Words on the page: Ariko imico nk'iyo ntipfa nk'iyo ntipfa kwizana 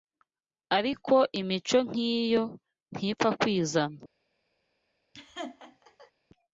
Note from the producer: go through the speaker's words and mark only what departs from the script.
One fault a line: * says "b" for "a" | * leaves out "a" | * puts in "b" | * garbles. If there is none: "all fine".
* leaves out "nk'iyo ntipfa"